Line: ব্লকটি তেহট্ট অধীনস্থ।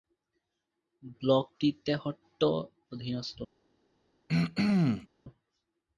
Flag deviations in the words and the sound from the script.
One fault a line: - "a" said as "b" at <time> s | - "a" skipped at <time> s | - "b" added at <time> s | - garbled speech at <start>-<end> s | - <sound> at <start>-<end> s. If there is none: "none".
- throat clearing at 4.3-5.1 s